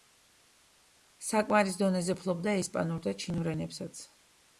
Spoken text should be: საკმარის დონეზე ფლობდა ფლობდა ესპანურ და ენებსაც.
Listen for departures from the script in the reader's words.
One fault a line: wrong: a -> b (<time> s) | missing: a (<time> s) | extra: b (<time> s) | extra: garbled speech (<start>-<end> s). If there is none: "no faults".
missing: ფლობდა (2.5 s)
extra: ჩინურ (3.2 s)